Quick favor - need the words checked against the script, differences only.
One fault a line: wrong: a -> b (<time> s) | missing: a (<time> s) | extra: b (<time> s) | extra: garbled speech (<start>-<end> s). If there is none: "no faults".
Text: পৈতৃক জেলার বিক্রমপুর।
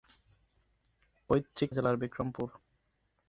no faults